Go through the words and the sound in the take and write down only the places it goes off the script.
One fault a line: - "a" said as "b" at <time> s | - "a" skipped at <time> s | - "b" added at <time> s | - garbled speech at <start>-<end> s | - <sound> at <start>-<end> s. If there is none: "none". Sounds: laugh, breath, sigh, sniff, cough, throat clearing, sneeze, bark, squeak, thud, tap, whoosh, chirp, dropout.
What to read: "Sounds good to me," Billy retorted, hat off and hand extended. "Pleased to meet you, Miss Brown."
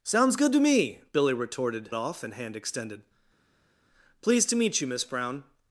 - "hat" skipped at 1.9 s